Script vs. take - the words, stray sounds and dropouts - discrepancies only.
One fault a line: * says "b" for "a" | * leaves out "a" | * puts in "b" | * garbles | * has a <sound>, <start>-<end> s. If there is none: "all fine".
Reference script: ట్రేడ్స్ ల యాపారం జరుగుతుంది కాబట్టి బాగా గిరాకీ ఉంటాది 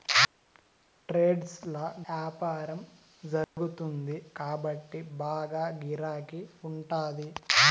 * has a dropout, 3.4-3.6 s